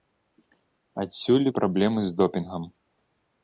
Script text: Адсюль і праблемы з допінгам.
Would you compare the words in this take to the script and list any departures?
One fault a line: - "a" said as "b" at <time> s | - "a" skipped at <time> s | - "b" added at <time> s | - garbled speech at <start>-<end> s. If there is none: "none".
none